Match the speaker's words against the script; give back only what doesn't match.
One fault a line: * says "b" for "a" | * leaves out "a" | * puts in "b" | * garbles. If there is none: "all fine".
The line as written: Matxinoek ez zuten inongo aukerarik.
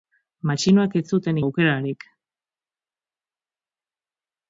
* leaves out "inongo"